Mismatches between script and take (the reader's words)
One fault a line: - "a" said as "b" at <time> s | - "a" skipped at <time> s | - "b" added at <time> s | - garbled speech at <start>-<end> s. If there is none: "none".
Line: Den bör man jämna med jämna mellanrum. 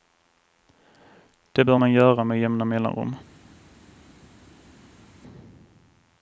- "Den" said as "Det" at 1.5 s
- "jämna" said as "göra" at 1.9 s